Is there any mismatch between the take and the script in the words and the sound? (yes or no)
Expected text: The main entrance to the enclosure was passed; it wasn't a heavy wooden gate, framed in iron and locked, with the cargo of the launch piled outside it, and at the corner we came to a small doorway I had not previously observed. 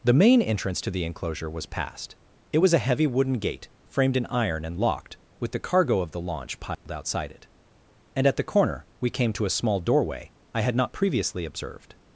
yes